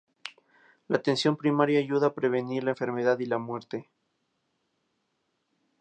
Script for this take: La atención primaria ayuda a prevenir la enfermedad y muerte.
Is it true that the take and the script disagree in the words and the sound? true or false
true